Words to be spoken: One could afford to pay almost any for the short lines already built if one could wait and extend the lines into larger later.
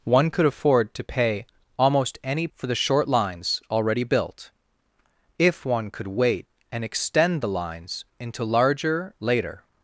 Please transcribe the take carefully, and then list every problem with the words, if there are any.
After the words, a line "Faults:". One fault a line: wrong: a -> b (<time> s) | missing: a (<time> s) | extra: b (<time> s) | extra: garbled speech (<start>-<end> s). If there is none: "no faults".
One could afford to pay almost any for the short lines already built if one could wait and extend the lines into larger later.
Faults:
no faults